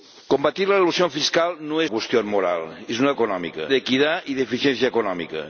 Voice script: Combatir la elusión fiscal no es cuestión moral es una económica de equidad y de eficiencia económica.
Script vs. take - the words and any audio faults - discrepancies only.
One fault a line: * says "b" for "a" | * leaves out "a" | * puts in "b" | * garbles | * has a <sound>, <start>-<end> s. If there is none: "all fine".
all fine